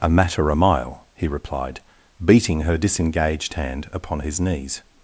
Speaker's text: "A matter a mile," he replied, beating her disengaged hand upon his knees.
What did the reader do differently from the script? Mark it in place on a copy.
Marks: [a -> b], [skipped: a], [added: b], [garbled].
"A matter a mile," he replied, beating her disengaged hand upon his knees.